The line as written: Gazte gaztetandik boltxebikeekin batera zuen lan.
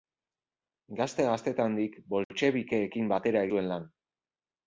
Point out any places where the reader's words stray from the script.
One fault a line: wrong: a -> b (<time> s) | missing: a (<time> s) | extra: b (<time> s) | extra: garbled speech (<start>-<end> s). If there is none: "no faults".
no faults